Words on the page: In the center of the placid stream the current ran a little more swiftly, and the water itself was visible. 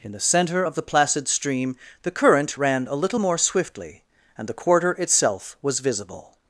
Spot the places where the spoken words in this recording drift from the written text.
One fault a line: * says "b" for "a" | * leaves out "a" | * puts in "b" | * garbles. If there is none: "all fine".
* says "quarter" for "water"